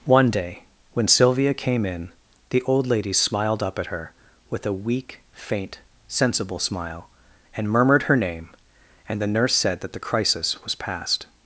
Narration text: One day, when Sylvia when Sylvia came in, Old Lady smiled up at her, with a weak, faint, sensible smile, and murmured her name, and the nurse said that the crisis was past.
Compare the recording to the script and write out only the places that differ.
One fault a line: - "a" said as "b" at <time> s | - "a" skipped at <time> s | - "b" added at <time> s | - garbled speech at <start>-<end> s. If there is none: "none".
- "when Sylvia" skipped at 1.5 s
- "the" added at 2.5 s